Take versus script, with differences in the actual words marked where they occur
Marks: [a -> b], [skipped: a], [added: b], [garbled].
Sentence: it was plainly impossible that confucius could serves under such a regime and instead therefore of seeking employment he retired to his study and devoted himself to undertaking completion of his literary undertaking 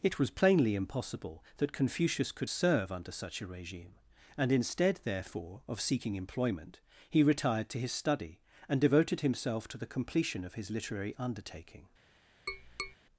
it was plainly impossible that confucius could [serves -> serve] under such a regime and instead therefore of seeking employment he retired to his study and devoted himself to [undertaking -> the] completion of his literary undertaking